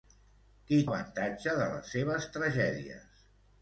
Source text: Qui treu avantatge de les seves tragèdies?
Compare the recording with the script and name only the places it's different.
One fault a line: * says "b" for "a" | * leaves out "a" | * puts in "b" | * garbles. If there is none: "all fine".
* leaves out "treu"